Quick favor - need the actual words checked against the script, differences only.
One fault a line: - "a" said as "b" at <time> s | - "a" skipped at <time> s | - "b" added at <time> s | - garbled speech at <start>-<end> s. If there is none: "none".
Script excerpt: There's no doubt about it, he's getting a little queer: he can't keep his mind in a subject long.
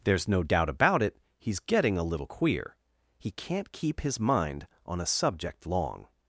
- "in" said as "on" at 4.9 s